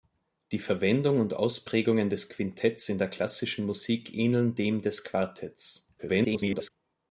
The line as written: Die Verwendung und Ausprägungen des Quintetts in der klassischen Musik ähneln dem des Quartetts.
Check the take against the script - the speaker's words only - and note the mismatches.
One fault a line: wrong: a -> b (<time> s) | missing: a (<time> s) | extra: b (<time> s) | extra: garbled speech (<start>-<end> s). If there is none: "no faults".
extra: garbled speech (6.0-6.7 s)